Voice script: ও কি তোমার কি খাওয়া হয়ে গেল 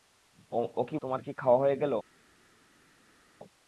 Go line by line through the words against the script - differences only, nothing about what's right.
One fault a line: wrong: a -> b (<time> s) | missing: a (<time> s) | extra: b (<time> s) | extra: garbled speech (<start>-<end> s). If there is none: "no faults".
no faults